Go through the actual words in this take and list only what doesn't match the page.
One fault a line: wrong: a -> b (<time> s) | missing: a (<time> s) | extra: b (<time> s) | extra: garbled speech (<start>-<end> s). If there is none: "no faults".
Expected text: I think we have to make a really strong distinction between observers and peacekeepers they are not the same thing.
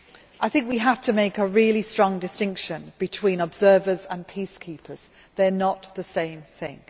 no faults